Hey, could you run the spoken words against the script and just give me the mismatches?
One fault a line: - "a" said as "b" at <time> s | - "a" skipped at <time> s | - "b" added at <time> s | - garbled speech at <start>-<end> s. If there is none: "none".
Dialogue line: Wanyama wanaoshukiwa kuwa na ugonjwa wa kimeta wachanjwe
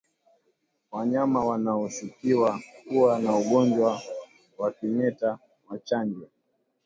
none